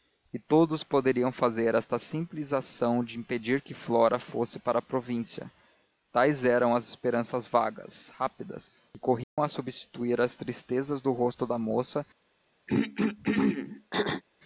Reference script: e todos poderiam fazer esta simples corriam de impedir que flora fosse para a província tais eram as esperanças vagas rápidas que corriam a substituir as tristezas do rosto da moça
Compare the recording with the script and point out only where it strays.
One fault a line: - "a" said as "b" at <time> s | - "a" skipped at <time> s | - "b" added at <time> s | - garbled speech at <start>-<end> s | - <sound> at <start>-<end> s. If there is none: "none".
- "corriam" said as "ação" at 2.5 s
- dropout at 9.2-9.4 s
- throat clearing at 12.7-14.2 s